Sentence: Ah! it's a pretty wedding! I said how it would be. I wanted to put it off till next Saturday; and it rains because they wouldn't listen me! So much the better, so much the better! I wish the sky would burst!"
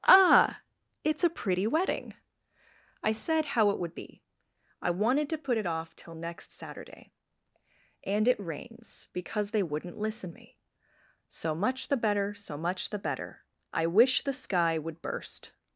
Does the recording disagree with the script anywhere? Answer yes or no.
no